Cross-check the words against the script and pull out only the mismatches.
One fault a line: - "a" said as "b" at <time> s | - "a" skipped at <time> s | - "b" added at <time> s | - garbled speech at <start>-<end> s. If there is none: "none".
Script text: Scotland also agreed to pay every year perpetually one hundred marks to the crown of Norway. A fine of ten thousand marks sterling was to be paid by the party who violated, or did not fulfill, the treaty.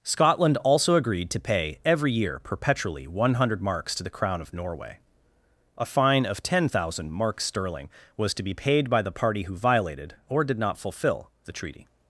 none